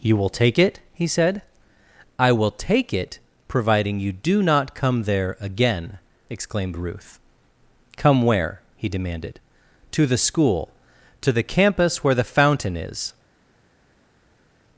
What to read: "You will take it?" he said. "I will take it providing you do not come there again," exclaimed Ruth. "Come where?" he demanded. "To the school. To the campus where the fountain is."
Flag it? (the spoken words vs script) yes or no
no